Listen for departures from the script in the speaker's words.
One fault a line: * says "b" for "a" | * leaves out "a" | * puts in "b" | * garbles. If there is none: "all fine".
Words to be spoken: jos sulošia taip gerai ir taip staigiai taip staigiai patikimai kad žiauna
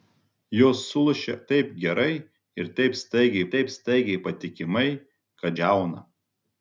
all fine